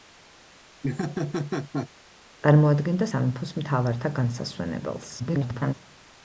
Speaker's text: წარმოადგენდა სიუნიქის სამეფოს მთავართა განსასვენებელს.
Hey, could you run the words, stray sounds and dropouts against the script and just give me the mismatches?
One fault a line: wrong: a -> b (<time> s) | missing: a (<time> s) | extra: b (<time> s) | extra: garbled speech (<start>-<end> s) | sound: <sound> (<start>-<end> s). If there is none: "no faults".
sound: laugh (0.8-1.9 s)
missing: სიუნიქის (3.1 s)
extra: garbled speech (5.2-5.7 s)